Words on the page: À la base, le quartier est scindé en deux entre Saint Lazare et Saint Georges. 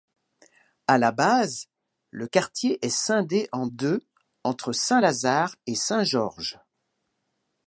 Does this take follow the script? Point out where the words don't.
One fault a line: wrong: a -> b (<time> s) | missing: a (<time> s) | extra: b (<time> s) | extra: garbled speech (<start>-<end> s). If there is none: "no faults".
no faults